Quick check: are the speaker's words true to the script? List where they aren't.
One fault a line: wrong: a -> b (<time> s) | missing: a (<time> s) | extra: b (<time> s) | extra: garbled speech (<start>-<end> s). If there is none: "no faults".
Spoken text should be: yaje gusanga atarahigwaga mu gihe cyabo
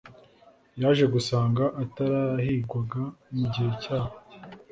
no faults